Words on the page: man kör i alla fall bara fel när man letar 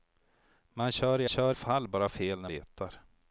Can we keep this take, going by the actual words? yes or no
no